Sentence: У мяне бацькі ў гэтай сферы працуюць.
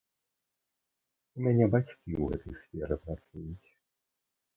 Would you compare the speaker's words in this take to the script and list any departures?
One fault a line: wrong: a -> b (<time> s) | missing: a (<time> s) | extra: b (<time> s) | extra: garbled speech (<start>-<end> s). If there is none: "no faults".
no faults